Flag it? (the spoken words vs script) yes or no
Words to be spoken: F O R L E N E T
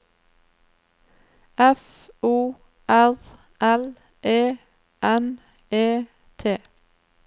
no